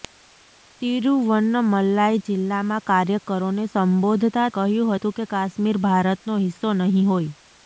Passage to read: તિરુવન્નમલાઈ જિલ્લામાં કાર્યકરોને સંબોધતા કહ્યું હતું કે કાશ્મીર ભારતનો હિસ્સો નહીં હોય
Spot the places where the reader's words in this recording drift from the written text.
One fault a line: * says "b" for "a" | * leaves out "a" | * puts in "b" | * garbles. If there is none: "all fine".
all fine